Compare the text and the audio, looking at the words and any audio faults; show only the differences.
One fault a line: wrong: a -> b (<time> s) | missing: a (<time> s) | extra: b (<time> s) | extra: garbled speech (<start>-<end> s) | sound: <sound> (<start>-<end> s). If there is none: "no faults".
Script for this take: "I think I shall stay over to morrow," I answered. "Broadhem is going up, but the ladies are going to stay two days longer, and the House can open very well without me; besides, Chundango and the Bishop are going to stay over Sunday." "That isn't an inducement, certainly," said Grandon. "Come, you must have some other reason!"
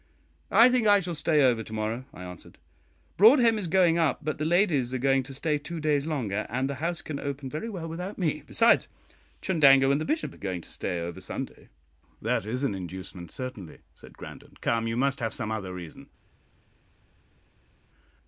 wrong: isn't -> is (12.5 s)